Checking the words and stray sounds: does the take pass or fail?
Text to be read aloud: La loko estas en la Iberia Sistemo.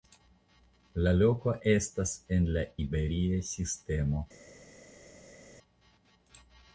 pass